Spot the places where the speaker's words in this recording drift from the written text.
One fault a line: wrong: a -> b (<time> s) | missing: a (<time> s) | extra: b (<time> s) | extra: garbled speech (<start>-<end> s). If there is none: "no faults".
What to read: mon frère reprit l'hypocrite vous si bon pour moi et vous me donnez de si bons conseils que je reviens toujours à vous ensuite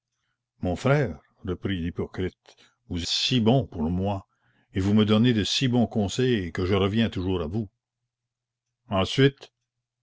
no faults